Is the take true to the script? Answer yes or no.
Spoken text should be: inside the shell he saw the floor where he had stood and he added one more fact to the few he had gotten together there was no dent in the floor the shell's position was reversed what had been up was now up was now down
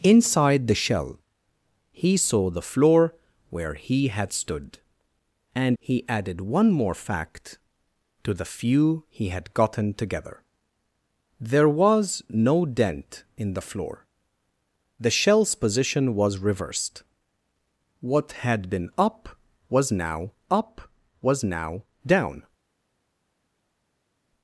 yes